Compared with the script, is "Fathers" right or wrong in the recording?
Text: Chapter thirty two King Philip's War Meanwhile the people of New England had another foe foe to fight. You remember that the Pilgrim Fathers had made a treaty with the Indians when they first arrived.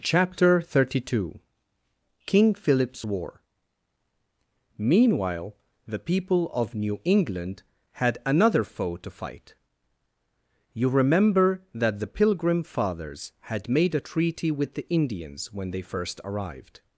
right